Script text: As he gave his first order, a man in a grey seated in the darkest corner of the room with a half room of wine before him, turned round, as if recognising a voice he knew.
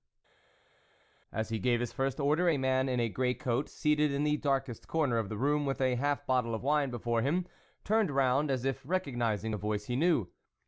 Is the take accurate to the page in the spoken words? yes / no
no